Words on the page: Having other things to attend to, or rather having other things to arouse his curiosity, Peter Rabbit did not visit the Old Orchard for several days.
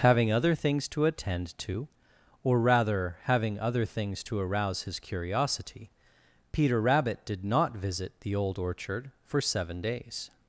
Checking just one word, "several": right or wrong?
wrong